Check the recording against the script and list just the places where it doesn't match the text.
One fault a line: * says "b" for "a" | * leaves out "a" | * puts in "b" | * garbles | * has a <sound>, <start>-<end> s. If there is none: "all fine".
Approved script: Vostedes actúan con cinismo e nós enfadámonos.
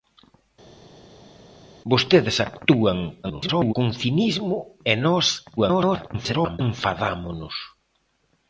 * garbles
* garbles